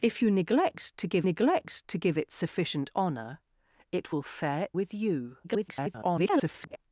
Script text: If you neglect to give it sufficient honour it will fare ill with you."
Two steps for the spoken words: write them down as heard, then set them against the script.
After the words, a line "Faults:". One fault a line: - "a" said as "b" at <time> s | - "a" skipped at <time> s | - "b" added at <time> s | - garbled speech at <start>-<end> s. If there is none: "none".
If you neglect to give neglect to give it sufficient honour it will fare with you." [garbled]
Faults:
- "neglect to give" added at 1.2 s
- "ill" skipped at 4.7 s
- garbled speech at 5.4-6.8 s